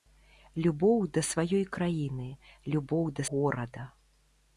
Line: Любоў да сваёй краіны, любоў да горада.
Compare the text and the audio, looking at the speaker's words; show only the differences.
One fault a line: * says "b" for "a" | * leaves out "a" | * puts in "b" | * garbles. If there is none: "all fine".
all fine